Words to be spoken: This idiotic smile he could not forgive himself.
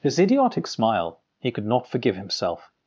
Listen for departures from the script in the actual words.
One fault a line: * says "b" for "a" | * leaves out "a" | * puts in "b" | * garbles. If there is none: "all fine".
* says "His" for "This"